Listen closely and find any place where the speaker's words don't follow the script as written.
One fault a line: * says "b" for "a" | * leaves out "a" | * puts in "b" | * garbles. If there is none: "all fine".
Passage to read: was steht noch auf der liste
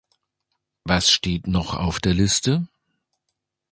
all fine